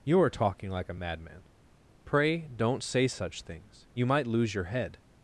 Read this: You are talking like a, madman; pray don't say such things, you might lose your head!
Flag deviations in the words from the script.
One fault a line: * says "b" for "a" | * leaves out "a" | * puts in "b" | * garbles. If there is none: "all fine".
all fine